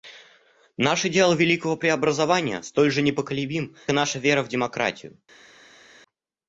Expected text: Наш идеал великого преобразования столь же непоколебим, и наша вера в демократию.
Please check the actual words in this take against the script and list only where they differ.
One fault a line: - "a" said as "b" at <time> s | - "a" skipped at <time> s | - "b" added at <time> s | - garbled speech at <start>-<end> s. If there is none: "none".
none